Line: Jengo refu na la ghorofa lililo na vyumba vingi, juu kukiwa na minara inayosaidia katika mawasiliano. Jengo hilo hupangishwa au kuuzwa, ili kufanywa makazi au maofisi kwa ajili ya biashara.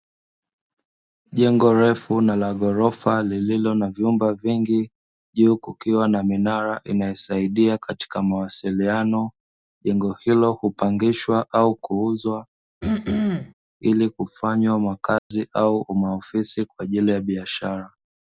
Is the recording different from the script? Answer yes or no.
no